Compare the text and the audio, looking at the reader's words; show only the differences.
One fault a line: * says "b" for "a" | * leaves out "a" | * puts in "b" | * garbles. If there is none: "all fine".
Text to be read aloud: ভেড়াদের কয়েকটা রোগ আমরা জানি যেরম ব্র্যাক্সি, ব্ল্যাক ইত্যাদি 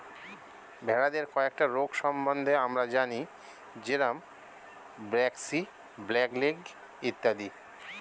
* puts in "সম্বন্ধে"
* puts in "লেগ"